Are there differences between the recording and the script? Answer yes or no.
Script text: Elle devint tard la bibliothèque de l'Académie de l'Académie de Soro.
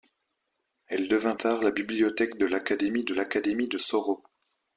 no